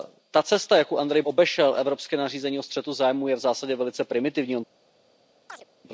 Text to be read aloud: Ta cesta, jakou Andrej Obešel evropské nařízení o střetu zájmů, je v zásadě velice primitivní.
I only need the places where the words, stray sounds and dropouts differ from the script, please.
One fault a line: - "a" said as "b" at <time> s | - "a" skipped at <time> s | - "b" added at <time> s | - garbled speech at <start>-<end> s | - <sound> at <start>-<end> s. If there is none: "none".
- chirp at 5.5-5.7 s